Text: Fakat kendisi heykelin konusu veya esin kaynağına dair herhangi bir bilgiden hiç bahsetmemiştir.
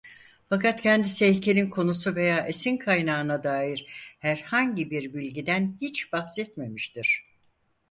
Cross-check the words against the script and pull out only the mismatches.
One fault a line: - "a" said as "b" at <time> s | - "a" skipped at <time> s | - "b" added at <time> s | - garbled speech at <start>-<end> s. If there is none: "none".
none